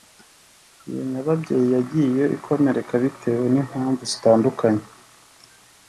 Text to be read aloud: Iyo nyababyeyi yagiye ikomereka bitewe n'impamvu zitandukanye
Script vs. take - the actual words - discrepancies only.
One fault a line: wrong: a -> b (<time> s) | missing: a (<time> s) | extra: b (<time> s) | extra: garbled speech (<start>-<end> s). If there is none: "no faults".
no faults